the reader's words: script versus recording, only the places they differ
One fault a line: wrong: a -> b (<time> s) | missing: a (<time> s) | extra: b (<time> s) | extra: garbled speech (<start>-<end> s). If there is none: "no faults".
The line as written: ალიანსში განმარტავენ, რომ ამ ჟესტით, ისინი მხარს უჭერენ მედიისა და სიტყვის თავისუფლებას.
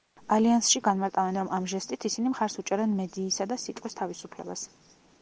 no faults